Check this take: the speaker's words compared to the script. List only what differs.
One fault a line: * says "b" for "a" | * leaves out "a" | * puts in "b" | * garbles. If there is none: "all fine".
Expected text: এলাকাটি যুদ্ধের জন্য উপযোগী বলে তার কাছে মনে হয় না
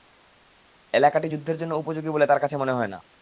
all fine